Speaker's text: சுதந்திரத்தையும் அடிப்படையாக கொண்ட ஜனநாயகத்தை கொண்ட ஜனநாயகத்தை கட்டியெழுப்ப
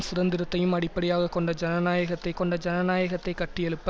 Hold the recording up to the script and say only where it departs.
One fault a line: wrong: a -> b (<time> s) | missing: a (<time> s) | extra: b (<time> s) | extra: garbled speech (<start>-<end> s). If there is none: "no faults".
no faults